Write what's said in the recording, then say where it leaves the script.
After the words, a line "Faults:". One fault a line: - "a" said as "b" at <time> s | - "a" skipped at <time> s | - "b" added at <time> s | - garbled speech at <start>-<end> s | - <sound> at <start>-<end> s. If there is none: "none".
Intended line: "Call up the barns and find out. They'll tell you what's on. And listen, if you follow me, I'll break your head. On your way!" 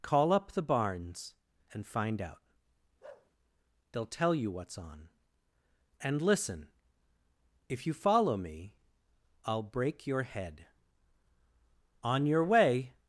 "Call up the barns and find out. They'll tell you what's on. And listen, if you follow me, I'll break your head. On your way!"
Faults:
- bark at 3.0-3.3 s